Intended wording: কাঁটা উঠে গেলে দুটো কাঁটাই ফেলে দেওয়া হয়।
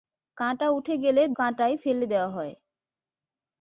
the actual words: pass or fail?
fail